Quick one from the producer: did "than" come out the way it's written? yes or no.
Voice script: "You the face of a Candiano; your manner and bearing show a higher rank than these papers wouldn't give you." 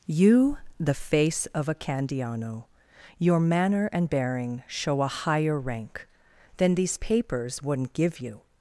yes